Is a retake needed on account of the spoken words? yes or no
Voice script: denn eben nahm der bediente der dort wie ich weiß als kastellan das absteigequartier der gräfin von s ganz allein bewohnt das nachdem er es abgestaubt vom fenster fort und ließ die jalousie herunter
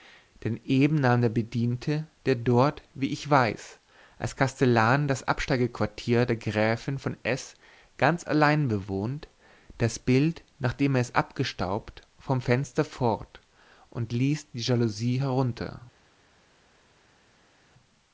yes